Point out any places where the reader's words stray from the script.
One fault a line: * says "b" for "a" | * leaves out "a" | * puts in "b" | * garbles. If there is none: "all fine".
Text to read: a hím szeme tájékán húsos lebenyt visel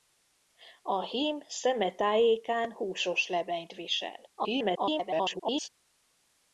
* garbles